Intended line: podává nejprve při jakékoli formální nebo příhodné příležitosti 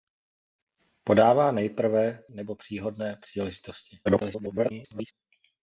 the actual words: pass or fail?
fail